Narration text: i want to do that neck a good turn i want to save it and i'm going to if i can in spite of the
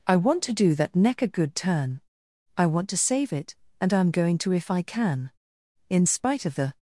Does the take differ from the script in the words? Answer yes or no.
no